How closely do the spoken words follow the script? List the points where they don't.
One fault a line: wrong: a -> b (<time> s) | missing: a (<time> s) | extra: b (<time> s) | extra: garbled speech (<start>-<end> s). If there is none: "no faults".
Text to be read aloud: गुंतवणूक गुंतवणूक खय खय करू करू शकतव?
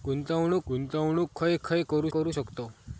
no faults